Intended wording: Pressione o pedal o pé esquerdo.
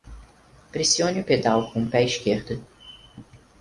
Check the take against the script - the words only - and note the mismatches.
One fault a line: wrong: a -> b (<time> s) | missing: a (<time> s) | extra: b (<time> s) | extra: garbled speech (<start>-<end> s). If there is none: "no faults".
extra: com (1.7 s)